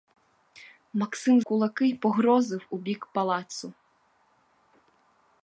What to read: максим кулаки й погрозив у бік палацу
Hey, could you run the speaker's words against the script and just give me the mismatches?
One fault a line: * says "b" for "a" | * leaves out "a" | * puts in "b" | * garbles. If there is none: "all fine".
all fine